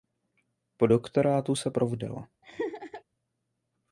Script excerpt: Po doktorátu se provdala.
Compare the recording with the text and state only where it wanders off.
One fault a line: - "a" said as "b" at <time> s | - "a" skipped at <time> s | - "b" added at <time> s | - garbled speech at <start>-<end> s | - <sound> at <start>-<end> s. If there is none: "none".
- laugh at 2.4-3.0 s